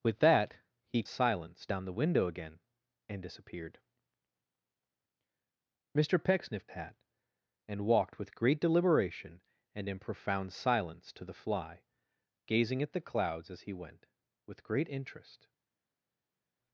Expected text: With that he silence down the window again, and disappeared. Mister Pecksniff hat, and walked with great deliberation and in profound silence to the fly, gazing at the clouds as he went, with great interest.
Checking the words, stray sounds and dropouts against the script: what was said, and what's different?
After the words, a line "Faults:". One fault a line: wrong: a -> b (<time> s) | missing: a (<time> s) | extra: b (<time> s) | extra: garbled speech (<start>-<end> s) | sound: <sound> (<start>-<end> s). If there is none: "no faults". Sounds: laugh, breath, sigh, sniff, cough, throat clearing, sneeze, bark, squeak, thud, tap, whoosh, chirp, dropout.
With that he silence down the window again, and disappeared. Mister Pecksniff hat, and walked with great deliberation and in profound silence to the fly, gazing at the clouds as he went, with great interest.
Faults:
no faults